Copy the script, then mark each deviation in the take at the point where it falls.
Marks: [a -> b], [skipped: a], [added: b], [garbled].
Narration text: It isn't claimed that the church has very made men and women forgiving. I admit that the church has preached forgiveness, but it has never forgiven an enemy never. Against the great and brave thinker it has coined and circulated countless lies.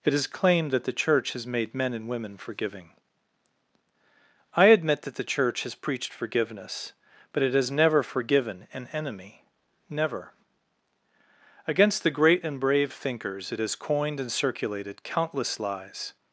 It [isn't -> is] claimed that the church has [skipped: very] made men and women forgiving. I admit that the church has preached forgiveness, but it has never forgiven an enemy never. Against the great and brave [thinker -> thinkers] it has coined and circulated countless lies.